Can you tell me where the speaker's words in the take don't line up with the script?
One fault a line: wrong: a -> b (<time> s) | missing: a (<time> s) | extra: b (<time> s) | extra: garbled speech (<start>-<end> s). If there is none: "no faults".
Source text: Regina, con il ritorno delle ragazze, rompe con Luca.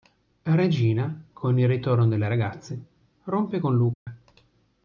no faults